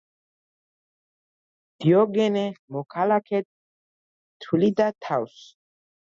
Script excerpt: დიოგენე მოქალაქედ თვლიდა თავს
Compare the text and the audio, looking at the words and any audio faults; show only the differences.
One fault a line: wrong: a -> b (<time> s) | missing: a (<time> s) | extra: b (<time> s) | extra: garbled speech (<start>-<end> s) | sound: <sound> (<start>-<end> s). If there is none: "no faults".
no faults